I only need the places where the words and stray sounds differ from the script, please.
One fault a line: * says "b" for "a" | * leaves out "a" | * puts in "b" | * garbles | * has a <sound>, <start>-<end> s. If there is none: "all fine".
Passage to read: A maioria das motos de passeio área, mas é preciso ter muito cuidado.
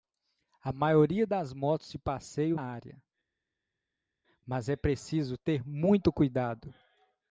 all fine